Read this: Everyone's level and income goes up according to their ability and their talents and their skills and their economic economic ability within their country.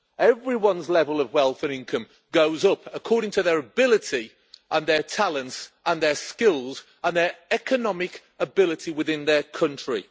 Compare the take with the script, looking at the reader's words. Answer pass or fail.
fail